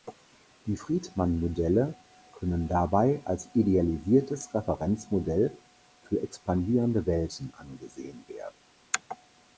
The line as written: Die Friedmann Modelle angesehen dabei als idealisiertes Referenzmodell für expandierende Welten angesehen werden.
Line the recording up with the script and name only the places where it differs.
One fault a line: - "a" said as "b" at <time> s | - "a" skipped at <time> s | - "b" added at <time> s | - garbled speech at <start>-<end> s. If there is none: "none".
- "angesehen" said as "können" at 2.4 s